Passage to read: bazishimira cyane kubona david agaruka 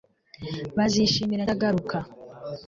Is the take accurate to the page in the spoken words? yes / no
no